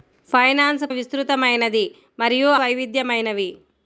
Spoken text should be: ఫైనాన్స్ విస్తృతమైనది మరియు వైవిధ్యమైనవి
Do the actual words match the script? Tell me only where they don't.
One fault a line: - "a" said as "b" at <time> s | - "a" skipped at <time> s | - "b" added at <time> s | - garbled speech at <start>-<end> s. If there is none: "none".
none